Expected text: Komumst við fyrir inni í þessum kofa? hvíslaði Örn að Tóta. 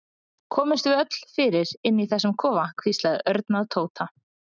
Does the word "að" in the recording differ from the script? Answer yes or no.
no